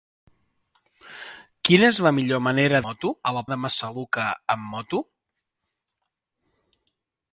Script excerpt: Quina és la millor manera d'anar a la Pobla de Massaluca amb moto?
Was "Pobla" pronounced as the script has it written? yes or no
no